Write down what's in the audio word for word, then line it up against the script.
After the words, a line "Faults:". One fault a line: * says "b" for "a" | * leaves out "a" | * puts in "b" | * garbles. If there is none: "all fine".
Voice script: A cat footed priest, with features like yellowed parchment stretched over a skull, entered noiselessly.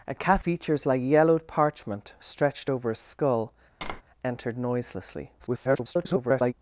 A cat features like yellowed parchment stretched over a skull, entered noiselessly. [garbled]
Faults:
* leaves out "footed priest with"
* garbles